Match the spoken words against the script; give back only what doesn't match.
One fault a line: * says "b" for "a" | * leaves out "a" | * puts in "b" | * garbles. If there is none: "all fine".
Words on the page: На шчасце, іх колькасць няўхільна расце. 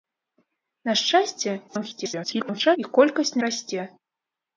* garbles
* leaves out "няўхільна"